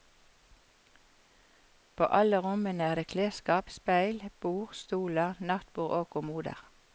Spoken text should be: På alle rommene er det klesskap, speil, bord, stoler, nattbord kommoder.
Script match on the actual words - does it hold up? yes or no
no